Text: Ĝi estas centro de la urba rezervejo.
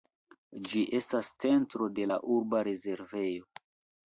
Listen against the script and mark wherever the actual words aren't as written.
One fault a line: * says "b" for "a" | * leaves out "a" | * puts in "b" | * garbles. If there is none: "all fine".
all fine